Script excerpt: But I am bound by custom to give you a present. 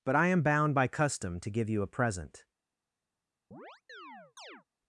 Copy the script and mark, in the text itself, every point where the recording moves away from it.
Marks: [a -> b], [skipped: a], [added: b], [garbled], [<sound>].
But I am bound by custom to give you a present. [chirp]